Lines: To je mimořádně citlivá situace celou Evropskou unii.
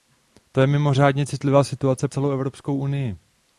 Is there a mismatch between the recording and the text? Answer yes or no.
no